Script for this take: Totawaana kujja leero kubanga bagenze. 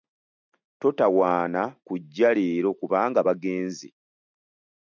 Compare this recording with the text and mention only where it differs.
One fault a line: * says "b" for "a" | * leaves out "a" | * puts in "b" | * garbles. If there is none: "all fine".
all fine